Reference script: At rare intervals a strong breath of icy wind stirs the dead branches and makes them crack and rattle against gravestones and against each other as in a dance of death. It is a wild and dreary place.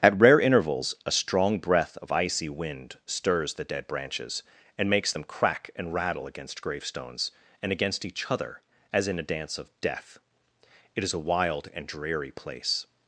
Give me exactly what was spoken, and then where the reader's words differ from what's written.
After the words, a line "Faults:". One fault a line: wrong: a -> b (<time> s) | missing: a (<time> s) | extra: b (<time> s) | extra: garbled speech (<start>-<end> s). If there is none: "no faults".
At rare intervals a strong breath of icy wind stirs the dead branches and makes them crack and rattle against gravestones and against each other as in a dance of death. It is a wild and dreary place.
Faults:
no faults